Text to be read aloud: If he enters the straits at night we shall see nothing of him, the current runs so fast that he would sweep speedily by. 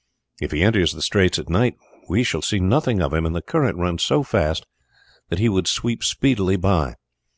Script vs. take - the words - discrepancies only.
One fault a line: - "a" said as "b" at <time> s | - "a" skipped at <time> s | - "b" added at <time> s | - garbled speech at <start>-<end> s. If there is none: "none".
- "and" added at 3.3 s